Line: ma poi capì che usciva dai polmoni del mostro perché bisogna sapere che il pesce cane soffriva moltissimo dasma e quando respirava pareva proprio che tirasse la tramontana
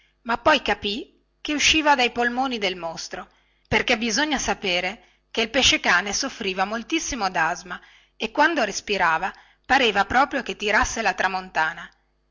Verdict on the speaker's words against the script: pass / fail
pass